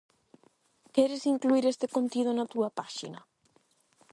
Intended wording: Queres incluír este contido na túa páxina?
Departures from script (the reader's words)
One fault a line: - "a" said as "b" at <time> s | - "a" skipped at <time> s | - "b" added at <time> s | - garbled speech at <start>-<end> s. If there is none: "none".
none